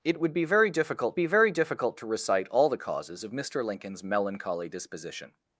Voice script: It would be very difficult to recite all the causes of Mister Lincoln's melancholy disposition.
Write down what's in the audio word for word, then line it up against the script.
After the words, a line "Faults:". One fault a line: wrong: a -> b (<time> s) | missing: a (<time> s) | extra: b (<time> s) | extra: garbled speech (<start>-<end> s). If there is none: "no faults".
It would be very difficult be very difficult to recite all the causes of Mister Lincoln's melancholy disposition.
Faults:
extra: be very difficult (1.1 s)